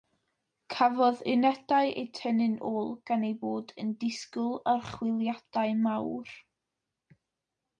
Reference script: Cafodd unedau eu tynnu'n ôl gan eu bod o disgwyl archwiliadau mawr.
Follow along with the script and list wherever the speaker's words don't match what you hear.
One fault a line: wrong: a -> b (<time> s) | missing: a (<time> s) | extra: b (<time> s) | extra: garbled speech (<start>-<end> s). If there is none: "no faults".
wrong: o -> yn (3.8 s)